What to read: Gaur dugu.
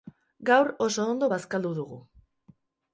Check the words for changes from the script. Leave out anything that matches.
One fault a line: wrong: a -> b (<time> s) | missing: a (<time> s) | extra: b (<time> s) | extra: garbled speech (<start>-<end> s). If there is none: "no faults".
extra: oso ondo bazkaldu (0.9 s)